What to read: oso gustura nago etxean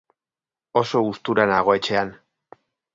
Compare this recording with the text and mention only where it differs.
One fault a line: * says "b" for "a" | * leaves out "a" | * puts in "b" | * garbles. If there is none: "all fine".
all fine